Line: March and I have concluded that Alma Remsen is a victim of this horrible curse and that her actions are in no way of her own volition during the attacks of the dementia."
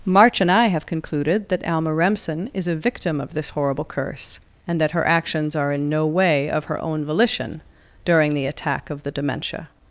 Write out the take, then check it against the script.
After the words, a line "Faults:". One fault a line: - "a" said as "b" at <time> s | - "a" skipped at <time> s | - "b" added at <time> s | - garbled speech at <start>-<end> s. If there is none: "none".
March and I have concluded that Alma Remsen is a victim of this horrible curse and that her actions are in no way of her own volition during the attack of the dementia."
Faults:
- "attacks" said as "attack" at 8.4 s